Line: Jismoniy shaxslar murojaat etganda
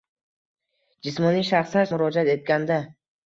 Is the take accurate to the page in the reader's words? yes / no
yes